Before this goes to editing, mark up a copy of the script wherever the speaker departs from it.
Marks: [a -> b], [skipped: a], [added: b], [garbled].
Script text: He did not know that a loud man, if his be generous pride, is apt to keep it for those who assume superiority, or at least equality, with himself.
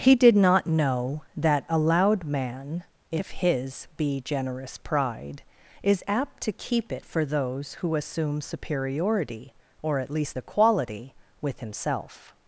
He did not know that a loud man, if his be generous pride, is apt to keep it for those who assume superiority, or at least equality, with himself.